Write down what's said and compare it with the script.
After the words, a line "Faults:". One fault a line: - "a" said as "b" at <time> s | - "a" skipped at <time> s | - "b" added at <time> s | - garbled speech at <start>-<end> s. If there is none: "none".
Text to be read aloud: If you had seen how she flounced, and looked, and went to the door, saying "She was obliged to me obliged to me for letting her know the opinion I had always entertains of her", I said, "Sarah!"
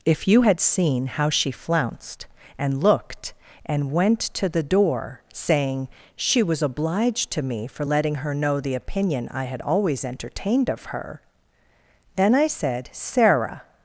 If you had seen how she flounced, and looked, and went to the door, saying "She was obliged to me for letting her know the opinion I had always entertained of her", then I said, "Sarah!"
Faults:
- "obliged to me" skipped at 7.7 s
- "entertains" said as "entertained" at 10.0 s
- "then" added at 12.2 s